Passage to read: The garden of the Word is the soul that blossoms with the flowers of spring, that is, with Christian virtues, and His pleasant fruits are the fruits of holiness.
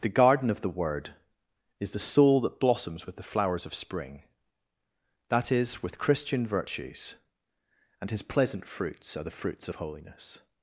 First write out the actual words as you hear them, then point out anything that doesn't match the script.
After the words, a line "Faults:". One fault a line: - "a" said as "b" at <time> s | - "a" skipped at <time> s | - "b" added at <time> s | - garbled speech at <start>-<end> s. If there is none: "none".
The garden of the Word is the soul that blossoms with the flowers of spring, that is, with Christian virtues, and His pleasant fruits are the fruits of holiness.
Faults:
none